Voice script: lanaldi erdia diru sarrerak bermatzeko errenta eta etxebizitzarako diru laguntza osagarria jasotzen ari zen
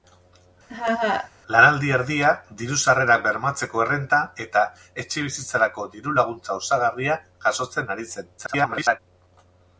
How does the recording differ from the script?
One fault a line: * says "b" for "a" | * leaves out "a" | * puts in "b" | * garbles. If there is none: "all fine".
* garbles